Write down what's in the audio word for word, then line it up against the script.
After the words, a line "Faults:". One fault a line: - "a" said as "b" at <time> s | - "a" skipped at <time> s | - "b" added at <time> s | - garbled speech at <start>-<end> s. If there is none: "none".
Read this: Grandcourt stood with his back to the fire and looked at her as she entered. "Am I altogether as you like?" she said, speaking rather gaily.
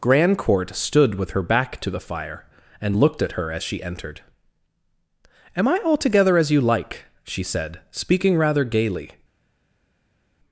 Grandcourt stood with her back to the fire and looked at her as she entered. "Am I altogether as you like?" she said, speaking rather gaily.
Faults:
- "his" said as "her" at 1.3 s